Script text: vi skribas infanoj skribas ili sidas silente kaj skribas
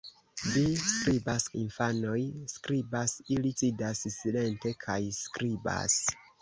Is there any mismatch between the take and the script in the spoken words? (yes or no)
no